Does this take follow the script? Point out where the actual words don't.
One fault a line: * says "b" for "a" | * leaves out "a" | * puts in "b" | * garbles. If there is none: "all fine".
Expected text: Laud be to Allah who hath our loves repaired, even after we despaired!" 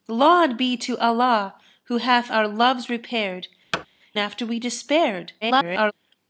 * leaves out "even"
* garbles